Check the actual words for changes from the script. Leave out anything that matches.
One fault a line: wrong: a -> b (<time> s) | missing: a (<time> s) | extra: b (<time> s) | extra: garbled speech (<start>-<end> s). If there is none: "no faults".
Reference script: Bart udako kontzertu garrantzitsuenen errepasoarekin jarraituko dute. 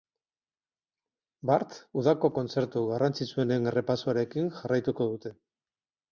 no faults